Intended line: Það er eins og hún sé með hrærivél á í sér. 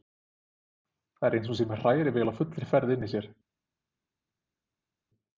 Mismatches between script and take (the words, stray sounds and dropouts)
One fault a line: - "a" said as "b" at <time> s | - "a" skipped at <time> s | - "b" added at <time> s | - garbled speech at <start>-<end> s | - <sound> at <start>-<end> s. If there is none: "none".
- "fullri ferð inni" added at 2.4 s